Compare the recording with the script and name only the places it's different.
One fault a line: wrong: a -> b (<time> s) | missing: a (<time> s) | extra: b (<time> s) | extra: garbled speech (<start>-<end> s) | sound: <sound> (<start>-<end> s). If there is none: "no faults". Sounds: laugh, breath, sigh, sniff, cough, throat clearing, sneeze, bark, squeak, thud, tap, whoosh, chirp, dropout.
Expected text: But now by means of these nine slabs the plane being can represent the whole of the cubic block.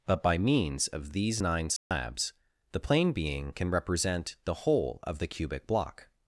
missing: now (0.2 s)
sound: dropout (1.8-1.9 s)